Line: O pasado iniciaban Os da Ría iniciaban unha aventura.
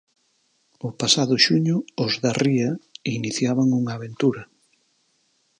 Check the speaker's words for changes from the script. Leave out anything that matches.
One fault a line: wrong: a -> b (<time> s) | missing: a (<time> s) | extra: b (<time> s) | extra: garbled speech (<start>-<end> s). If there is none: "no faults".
wrong: iniciaban -> xuño (1.4 s)